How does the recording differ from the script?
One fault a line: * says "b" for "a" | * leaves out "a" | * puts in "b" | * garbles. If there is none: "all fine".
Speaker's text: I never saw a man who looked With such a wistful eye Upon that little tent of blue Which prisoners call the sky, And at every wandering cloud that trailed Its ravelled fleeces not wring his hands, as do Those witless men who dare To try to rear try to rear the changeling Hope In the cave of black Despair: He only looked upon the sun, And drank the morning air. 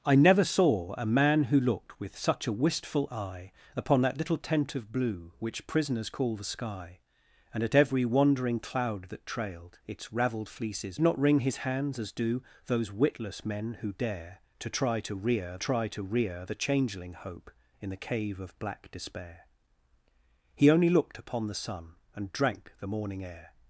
all fine